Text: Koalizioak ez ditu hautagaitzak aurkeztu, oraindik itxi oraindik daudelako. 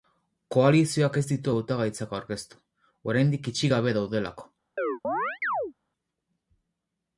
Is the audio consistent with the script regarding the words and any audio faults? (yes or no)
no